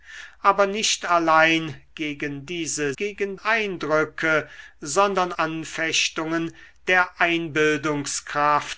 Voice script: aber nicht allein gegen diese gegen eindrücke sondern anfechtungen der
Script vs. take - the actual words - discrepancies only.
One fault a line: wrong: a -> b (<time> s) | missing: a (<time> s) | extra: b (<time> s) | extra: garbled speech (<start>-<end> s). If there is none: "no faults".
no faults